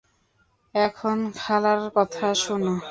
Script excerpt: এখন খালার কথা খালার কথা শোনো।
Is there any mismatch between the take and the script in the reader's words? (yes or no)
yes